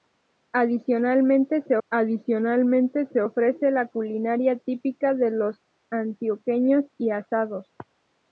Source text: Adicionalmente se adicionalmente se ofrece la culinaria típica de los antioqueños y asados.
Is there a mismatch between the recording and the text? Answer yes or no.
no